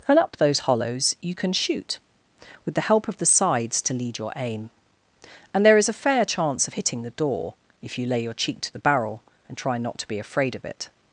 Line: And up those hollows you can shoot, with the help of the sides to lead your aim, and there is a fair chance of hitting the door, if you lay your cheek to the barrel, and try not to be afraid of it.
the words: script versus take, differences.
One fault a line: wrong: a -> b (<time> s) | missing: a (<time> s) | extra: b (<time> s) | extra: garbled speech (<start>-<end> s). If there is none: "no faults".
no faults